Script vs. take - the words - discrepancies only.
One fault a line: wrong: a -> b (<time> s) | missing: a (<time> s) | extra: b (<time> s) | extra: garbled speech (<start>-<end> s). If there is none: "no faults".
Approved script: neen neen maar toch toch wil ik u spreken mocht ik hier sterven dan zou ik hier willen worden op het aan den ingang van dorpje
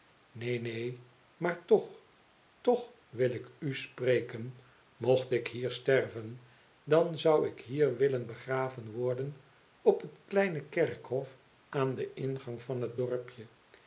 extra: begraven (8.3 s)
extra: kleine kerkhof (10.2 s)
extra: het (12.8 s)